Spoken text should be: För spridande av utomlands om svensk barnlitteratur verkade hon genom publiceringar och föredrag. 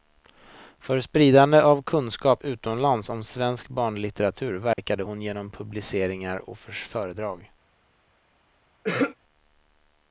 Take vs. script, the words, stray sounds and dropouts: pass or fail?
fail